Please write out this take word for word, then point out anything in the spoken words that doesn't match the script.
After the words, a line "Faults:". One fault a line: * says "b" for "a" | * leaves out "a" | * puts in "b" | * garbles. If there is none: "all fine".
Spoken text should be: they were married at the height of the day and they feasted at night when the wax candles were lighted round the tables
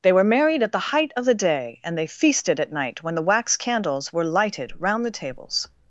they were married at the height of the day and they feasted at night when the wax candles were lighted round the tables
Faults:
all fine